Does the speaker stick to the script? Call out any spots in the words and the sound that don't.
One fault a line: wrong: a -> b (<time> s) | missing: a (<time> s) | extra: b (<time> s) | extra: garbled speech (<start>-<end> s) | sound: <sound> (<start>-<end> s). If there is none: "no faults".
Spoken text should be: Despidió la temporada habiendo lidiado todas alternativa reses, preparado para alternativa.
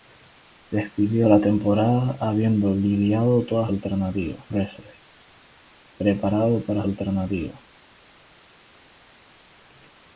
no faults